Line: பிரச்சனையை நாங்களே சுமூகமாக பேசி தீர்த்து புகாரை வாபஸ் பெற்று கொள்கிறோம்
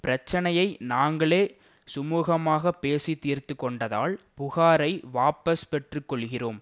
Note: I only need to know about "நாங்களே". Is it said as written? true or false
true